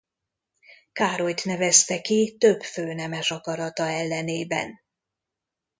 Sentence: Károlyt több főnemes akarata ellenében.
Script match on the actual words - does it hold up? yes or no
no